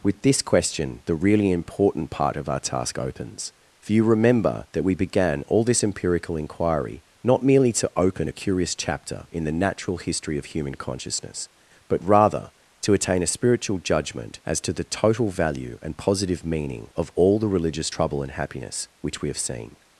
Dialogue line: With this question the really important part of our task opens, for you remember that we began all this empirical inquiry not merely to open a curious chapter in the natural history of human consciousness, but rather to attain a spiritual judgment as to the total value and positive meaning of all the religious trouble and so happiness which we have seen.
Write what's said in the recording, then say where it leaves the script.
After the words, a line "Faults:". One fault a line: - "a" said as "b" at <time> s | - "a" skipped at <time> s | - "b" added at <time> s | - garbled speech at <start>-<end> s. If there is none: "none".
With this question the really important part of our task opens, for you remember that we began all this empirical inquiry not merely to open a curious chapter in the natural history of human consciousness, but rather to attain a spiritual judgment as to the total value and positive meaning of all the religious trouble and happiness which we have seen.
Faults:
- "so" skipped at 18.3 s